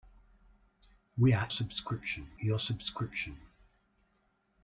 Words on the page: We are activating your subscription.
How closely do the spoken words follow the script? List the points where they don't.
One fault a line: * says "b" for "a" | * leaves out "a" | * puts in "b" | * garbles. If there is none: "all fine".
* says "subscription" for "activating"